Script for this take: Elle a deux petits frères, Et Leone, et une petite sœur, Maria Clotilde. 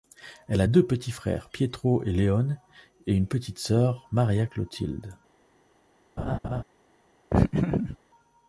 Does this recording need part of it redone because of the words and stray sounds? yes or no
yes